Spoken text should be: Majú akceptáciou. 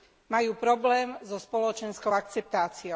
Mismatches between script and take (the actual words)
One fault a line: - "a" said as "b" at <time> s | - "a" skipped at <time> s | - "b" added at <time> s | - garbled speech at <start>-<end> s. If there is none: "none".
- "problém so spoločenskou" added at 0.6 s